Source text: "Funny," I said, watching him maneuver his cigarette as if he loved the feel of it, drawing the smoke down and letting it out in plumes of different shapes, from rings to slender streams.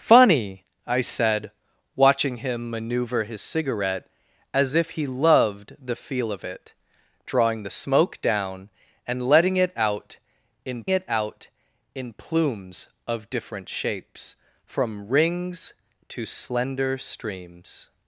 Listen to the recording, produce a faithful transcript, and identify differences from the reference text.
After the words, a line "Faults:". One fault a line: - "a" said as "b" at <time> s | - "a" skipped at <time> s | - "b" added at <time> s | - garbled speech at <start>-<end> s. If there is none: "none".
"Funny," I said, watching him maneuver his cigarette as if he loved the feel of it, drawing the smoke down and letting it out in it out in plumes of different shapes, from rings to slender streams.
Faults:
- "it out in" added at 10.9 s